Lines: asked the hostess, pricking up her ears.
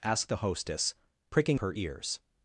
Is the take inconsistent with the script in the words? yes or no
yes